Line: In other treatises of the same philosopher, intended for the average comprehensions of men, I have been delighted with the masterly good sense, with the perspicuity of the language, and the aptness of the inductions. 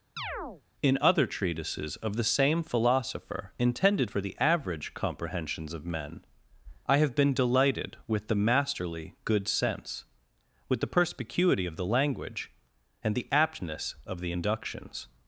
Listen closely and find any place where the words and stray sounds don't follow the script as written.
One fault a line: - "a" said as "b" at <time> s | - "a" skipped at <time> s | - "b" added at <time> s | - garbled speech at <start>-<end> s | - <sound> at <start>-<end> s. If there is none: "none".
- chirp at 0.2-0.6 s